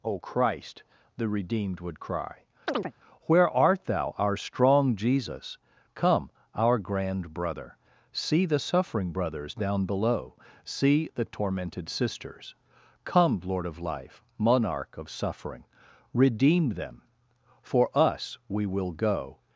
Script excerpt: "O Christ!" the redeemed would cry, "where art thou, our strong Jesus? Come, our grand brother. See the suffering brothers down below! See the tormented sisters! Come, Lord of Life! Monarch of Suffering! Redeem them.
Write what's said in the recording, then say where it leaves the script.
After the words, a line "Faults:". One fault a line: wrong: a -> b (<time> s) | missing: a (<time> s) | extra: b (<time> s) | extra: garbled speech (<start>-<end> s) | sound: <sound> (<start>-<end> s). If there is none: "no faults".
"O Christ!" the redeemed would cry, "where art thou, our strong Jesus? Come, our grand brother. See the suffering brothers down below! See the tormented sisters! Come, Lord of Life! Monarch of Suffering! Redeem them. For us, we will go
Faults:
sound: chirp (2.7-2.9 s)
extra: For us we will go (17.6 s)